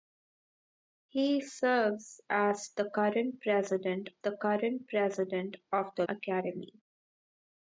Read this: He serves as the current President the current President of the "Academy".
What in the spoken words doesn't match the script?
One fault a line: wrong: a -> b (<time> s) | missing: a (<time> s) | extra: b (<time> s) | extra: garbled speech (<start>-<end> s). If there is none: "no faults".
no faults